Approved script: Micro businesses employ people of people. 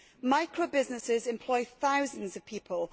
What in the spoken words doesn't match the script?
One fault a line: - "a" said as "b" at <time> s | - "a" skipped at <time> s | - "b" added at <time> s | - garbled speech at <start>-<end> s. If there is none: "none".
- "people" said as "thousands" at 1.6 s